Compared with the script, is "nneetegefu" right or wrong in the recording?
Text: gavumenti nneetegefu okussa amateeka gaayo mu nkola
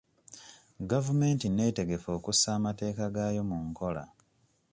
right